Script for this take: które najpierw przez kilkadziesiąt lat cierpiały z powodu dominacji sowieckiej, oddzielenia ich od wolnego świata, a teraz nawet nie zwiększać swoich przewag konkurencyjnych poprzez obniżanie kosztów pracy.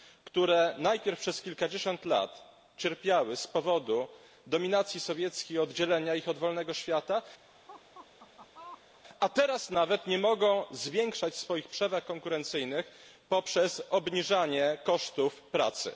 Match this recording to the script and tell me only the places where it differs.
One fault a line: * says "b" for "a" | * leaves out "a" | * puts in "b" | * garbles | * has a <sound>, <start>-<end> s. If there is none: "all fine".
* has a laugh, 7.5-9.0 s
* puts in "mogą"